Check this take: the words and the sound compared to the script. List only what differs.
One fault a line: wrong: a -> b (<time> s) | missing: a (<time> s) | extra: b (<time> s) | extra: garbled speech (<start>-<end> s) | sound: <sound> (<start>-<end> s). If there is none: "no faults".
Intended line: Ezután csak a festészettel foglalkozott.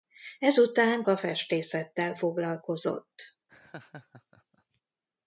missing: csak (1.0 s)
sound: laugh (3.5-4.8 s)